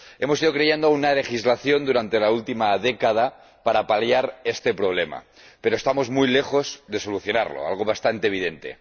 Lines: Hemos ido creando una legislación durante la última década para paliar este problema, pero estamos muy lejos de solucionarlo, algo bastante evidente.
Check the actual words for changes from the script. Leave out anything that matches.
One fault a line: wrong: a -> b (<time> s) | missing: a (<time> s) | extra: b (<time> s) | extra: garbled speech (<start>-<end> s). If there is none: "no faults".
no faults